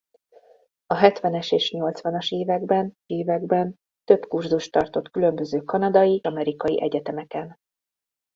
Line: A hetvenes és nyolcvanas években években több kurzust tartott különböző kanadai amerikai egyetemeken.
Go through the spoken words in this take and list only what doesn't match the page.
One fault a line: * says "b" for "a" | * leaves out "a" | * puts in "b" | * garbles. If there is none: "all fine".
all fine